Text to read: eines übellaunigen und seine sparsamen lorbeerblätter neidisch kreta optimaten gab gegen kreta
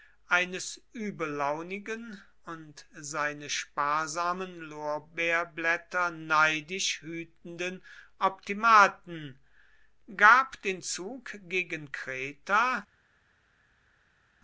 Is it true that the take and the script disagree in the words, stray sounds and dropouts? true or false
true